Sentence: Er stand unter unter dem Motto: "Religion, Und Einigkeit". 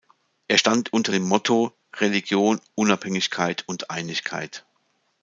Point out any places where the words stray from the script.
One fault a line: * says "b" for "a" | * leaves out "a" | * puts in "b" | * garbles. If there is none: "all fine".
* leaves out "unter"
* puts in "Unabhängigkeit"